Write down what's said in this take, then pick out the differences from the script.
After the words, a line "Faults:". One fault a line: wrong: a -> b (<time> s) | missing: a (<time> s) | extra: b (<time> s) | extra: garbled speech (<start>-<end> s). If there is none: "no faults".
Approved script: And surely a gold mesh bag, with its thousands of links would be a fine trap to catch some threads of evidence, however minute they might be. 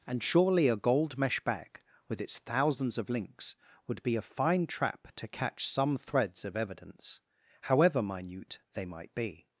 And surely a gold mesh bag, with its thousands of links would be a fine trap to catch some threads of evidence, however minute they might be.
Faults:
no faults